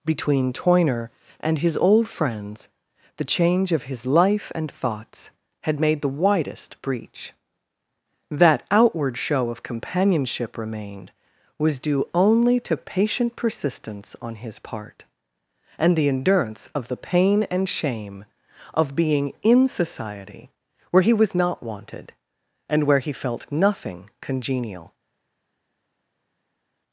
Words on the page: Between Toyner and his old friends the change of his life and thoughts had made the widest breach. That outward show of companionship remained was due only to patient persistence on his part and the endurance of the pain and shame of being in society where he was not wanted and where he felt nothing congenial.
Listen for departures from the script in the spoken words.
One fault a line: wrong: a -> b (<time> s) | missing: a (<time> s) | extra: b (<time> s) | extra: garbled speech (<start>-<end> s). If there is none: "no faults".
no faults